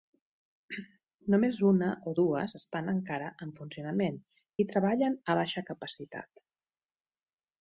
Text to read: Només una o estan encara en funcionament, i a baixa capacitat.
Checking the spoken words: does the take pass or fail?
fail